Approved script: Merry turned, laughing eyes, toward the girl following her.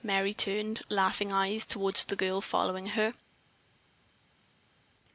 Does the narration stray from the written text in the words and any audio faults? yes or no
no